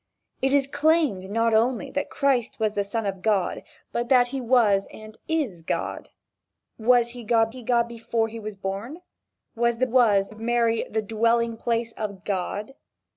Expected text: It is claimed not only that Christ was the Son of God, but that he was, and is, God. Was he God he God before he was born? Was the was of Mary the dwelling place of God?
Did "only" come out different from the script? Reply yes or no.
no